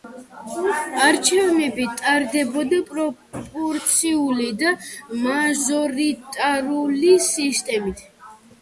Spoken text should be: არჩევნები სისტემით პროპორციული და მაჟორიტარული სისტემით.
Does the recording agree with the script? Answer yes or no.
no